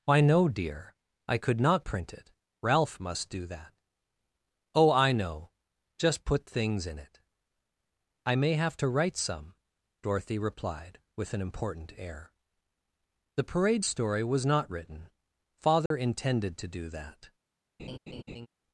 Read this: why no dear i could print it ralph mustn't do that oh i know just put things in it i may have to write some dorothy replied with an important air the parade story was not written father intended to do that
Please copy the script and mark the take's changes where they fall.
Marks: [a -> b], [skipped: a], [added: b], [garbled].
why no dear i could [added: not] print it ralph [mustn't -> must] do that oh i know just put things in it i may have to write some dorothy replied with an important air the parade story was not written father intended to do that